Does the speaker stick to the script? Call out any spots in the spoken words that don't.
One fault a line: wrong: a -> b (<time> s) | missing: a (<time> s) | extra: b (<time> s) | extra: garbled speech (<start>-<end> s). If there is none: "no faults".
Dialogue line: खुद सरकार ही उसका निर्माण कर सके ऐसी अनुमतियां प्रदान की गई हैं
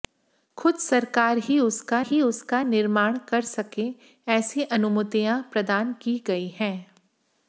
extra: ही उसका (2.0 s)